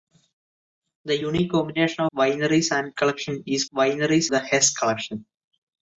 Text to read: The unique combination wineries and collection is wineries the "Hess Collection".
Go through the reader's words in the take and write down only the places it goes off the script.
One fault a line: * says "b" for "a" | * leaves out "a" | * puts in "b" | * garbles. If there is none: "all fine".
all fine